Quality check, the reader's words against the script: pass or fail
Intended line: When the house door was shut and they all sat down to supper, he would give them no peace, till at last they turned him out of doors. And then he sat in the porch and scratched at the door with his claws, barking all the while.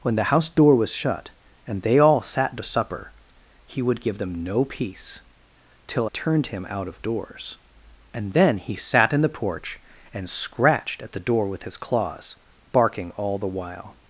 fail